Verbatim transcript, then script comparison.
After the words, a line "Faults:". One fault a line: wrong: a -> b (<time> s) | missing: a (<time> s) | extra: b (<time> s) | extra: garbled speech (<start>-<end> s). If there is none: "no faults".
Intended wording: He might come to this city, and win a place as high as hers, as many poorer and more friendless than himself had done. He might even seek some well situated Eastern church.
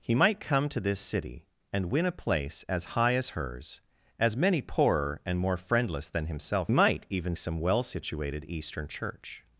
He might come to this city, and win a place as high as hers, as many poorer and more friendless than himself might even some well situated Eastern church.
Faults:
missing: had done He (6.7 s)
missing: seek (7.3 s)